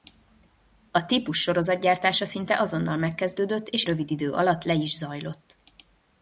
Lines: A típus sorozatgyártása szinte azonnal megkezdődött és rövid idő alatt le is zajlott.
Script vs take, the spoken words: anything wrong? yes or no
no